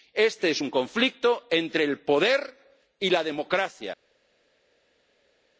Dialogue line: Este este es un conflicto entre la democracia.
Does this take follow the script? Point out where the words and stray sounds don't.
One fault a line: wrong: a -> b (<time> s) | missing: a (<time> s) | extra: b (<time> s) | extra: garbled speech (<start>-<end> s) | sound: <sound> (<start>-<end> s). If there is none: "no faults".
missing: este (0.5 s)
extra: el poder y (1.8 s)